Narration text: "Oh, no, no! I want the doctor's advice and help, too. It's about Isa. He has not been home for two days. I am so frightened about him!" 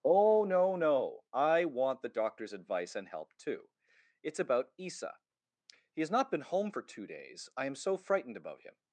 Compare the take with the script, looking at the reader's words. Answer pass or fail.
pass